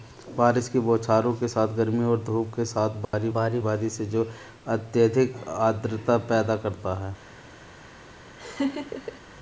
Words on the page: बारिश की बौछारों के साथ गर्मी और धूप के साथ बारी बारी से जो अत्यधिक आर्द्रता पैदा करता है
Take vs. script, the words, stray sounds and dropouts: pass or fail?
fail